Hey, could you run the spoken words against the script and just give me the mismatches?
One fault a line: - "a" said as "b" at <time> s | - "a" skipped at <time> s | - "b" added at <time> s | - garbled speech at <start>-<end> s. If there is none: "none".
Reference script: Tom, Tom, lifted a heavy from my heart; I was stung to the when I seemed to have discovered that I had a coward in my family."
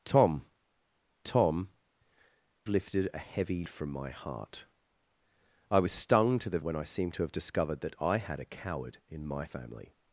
none